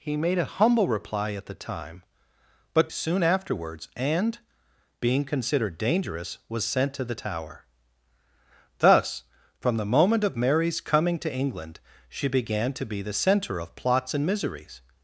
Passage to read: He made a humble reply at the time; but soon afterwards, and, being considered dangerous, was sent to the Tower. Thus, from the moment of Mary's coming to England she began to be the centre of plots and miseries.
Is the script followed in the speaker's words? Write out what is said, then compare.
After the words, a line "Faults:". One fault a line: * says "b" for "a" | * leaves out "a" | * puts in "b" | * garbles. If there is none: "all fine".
He made a humble reply at the time; but soon afterwards, and, being considered dangerous, was sent to the Tower. Thus, from the moment of Mary's coming to England she began to be the centre of plots and miseries.
Faults:
all fine